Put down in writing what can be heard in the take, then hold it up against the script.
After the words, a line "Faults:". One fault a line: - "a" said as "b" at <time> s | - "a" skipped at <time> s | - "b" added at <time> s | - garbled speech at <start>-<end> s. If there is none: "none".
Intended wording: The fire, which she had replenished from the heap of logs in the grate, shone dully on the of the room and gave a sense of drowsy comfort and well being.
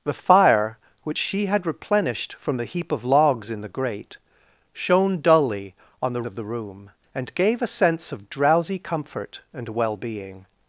The fire, which she had replenished from the heap of logs in the grate, shone dully on the of the room and gave a sense of drowsy comfort and well being.
Faults:
none